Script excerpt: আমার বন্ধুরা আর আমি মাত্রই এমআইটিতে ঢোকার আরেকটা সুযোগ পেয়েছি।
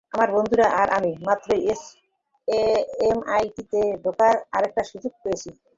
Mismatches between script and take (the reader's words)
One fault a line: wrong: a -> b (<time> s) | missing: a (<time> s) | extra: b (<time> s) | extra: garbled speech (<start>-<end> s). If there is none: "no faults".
no faults